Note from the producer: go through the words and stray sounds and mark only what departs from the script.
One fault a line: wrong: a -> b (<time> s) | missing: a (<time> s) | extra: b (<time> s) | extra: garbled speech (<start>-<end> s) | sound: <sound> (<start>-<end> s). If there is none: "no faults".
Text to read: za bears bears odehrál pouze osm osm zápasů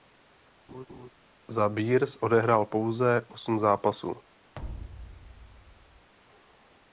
sound: laugh (0.7-1.1 s)
missing: bears (2.2 s)
missing: osm (3.6 s)
sound: thud (4.5-6.1 s)